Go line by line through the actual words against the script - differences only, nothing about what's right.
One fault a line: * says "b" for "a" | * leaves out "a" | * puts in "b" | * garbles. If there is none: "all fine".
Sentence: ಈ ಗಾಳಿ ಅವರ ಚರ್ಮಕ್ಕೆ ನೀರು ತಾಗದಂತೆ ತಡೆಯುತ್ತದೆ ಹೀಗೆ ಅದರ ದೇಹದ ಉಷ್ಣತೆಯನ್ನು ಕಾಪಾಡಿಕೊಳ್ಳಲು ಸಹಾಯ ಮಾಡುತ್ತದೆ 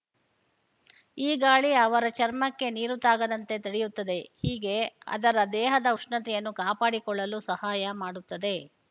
all fine